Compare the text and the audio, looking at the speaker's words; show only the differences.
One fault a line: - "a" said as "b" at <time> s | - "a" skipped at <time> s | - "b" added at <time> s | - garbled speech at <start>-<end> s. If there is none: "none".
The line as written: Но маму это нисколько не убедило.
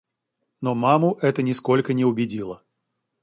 none